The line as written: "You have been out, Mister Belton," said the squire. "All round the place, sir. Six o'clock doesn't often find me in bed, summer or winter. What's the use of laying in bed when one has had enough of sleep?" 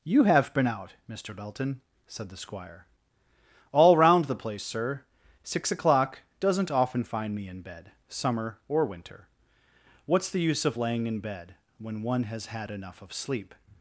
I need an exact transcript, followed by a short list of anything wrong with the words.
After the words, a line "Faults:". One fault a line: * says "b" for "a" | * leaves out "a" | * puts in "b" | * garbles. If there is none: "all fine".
"You have been out, Mister Belton," said the squire. "All round the place, sir. Six o'clock doesn't often find me in bed, summer or winter. What's the use of laying in bed when one has had enough of sleep?"
Faults:
all fine